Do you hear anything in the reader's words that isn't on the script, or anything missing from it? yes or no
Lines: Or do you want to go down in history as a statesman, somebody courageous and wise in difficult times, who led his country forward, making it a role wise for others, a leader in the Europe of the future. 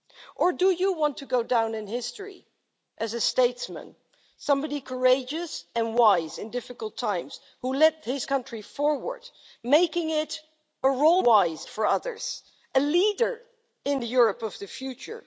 no